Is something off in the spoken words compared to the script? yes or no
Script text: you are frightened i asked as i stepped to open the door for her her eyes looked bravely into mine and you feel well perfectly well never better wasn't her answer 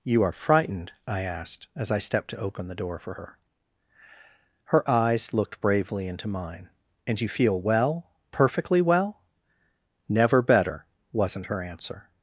no